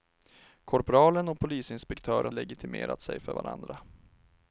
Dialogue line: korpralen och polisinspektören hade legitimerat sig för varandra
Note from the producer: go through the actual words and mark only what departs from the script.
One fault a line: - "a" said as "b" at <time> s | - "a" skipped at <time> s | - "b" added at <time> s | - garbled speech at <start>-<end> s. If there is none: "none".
- "hade" skipped at 2.3 s